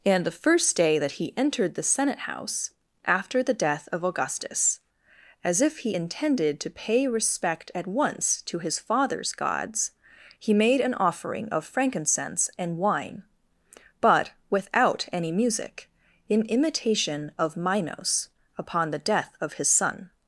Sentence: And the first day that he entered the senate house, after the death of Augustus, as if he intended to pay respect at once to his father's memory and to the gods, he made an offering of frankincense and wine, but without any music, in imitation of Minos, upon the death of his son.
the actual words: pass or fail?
fail